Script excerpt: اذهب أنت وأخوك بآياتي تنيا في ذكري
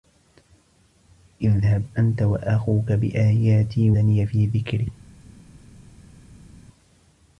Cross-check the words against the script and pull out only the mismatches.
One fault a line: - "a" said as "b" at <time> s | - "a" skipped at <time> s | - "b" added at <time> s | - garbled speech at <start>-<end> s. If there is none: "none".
none